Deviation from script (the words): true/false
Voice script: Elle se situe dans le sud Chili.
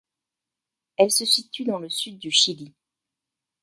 true